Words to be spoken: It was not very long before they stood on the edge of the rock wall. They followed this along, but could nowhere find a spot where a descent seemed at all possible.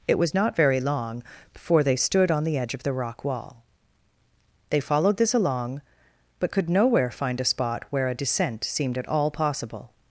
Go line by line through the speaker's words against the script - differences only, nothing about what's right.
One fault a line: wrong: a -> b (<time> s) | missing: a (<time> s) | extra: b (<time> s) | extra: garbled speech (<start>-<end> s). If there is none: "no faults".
no faults